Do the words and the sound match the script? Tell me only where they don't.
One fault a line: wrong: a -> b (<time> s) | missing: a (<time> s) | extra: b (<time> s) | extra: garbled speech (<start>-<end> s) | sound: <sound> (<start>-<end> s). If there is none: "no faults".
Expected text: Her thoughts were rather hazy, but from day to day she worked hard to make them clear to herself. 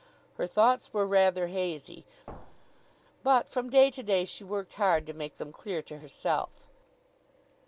sound: thud (2.3-2.9 s)